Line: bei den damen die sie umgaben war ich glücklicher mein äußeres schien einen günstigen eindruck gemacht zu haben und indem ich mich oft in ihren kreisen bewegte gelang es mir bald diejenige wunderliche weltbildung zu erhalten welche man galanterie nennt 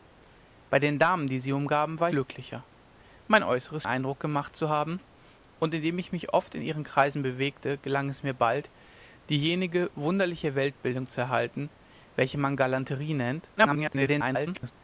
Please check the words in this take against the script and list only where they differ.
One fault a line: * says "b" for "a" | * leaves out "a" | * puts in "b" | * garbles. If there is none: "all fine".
* leaves out "ich"
* leaves out "schien einen günstigen"
* garbles